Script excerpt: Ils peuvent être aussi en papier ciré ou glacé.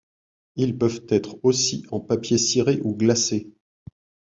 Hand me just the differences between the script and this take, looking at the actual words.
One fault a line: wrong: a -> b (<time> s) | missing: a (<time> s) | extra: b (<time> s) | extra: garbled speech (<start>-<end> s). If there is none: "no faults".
no faults